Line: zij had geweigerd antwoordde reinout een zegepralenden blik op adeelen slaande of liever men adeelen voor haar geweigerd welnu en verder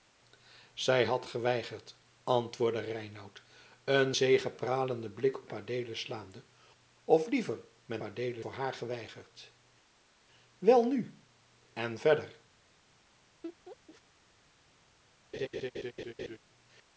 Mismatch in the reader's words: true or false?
false